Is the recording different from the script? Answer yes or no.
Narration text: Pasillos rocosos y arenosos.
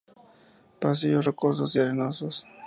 no